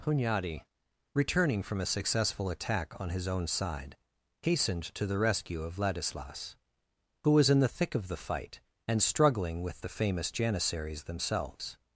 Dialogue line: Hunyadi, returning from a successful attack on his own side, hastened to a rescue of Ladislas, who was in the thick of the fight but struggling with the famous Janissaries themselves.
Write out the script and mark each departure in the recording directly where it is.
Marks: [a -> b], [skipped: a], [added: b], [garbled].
Hunyadi, returning from a successful attack on his own side, hastened to [a -> the] rescue of Ladislas, who was in the thick of the fight [but -> and] struggling with the famous Janissaries themselves.